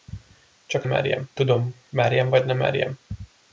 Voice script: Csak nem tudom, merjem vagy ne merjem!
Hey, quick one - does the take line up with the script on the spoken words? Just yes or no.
no